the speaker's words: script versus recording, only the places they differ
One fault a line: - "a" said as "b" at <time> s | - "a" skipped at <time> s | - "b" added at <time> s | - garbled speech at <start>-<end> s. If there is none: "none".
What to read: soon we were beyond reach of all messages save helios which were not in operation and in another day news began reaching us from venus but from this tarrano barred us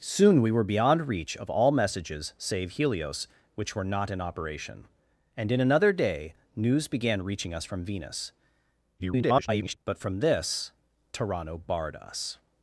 - garbled speech at 9.0-9.8 s